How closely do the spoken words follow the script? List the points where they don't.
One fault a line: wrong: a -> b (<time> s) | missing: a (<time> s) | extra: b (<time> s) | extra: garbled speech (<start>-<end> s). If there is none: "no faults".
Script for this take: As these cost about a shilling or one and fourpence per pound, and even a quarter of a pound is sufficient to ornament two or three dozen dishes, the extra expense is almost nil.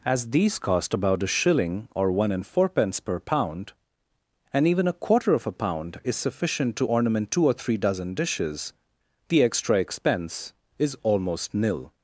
no faults